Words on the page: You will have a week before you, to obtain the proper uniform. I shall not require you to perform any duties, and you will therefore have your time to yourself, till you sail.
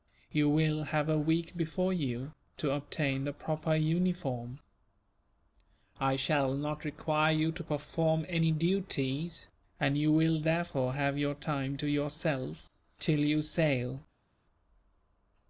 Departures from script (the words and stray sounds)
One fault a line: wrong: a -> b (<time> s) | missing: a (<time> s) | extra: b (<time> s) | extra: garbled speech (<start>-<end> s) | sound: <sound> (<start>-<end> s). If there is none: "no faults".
no faults